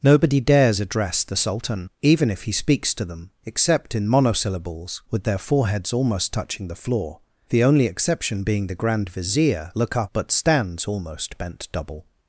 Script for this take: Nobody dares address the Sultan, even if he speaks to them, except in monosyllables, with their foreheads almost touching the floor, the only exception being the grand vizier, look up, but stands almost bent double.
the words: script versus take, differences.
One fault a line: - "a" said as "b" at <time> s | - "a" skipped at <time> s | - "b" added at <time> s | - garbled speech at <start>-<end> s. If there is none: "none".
none